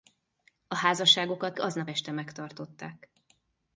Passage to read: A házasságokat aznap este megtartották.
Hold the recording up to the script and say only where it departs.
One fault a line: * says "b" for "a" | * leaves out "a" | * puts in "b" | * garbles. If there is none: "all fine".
all fine